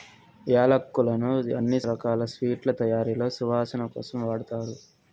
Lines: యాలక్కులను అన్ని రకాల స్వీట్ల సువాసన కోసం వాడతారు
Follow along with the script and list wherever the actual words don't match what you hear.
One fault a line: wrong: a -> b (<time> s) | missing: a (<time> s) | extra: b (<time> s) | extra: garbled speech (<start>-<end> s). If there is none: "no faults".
extra: తయారీలో (2.8 s)